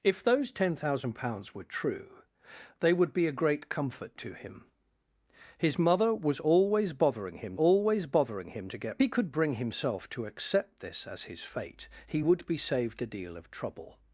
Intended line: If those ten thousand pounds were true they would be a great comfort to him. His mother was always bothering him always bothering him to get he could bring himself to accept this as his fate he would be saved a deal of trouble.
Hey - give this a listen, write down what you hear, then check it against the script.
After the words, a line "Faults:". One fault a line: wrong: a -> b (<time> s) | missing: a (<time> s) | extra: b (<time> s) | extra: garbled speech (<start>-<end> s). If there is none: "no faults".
If those ten thousand pounds were true they would be a great comfort to him. His mother was always bothering him always bothering him to get he could bring himself to accept this as his fate he would be saved a deal of trouble.
Faults:
no faults